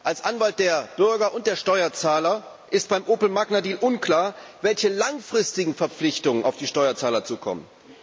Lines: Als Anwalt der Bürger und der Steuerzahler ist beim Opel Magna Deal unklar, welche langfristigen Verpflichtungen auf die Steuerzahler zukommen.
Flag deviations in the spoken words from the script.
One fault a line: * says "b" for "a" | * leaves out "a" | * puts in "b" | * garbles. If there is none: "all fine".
all fine